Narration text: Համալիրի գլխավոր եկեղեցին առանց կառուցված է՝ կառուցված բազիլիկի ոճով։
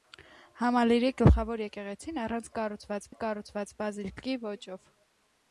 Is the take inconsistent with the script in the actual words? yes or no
no